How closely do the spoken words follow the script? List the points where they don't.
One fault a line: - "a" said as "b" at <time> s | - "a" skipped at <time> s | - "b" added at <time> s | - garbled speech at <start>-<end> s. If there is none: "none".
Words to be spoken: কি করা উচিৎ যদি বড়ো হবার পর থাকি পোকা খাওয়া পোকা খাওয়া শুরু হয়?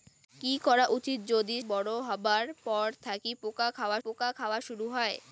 none